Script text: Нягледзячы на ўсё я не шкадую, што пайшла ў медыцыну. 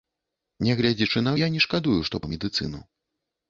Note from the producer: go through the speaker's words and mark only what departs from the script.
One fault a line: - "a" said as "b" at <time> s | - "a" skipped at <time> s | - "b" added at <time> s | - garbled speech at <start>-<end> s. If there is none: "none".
- "ўсё" skipped at 1.3 s
- "пайшла" skipped at 2.2 s